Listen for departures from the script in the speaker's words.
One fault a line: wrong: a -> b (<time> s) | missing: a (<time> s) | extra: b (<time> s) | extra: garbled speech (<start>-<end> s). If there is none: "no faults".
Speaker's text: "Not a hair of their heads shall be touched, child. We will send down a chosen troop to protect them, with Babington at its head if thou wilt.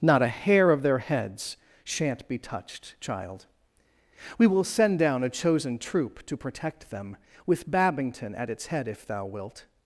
wrong: shall -> shan't (1.8 s)